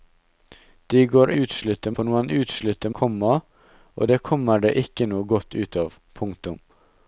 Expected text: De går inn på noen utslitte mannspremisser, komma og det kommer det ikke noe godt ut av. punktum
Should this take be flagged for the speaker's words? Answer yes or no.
yes